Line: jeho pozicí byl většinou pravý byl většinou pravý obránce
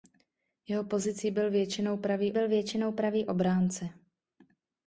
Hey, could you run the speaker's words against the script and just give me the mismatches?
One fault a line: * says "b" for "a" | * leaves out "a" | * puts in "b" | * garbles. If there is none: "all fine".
all fine